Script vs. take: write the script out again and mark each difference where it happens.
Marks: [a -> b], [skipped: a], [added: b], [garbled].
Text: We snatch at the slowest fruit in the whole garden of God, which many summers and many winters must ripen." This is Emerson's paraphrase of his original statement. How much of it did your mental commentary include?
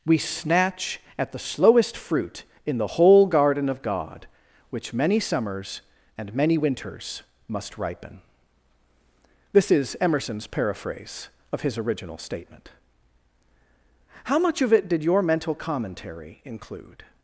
We snatch at the slowest fruit in the whole garden of God, which many summers and many winters must ripen." This is Emerson's paraphrase of his original statement. How much of it did your mental commentary include?